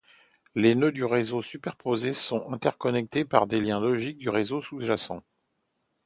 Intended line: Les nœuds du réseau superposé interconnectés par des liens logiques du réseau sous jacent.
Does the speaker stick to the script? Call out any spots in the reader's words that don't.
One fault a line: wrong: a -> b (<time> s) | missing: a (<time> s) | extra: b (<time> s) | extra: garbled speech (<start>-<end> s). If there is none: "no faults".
extra: sont (2.1 s)